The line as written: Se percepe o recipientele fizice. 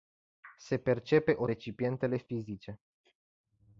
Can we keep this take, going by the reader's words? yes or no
yes